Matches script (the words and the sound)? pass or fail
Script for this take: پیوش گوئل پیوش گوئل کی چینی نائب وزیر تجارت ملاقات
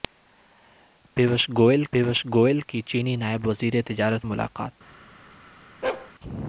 fail